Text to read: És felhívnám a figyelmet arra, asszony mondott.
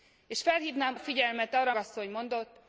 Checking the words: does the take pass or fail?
pass